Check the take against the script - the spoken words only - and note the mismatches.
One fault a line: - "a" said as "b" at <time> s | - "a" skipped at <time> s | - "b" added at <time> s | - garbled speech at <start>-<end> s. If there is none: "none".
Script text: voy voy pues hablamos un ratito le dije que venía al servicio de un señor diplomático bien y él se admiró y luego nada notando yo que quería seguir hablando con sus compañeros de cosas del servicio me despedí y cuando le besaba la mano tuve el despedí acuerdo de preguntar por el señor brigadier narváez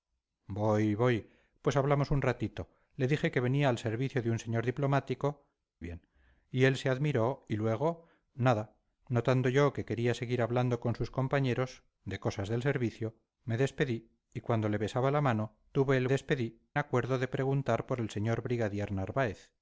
none